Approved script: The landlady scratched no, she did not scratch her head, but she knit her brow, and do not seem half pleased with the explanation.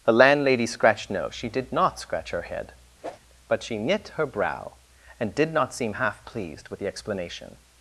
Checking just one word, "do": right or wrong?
wrong